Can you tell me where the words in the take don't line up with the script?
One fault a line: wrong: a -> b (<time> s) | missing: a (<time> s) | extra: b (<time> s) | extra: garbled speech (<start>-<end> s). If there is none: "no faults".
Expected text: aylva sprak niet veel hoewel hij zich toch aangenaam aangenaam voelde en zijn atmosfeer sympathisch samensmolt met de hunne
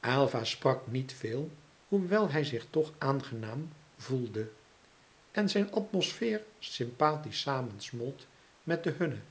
missing: aangenaam (3.7 s)